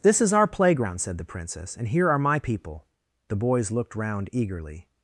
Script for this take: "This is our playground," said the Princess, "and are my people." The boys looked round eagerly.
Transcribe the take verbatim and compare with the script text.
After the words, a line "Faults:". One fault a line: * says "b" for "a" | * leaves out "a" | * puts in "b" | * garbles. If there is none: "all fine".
"This is our playground," said the Princess, "and here are my people." The boys looked round eagerly.
Faults:
* puts in "here"